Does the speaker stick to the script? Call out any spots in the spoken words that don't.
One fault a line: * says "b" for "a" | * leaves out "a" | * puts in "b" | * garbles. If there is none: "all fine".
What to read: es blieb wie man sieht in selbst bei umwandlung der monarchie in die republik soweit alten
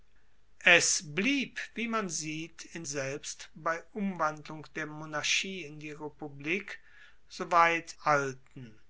all fine